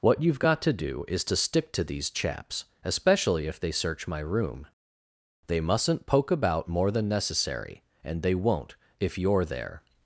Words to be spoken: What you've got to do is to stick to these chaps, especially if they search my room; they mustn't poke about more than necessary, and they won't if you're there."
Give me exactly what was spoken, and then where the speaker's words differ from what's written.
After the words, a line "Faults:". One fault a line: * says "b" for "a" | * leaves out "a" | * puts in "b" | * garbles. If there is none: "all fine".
What you've got to do is to stick to these chaps, especially if they search my room; they mustn't poke about more than necessary, and they won't if you're there."
Faults:
all fine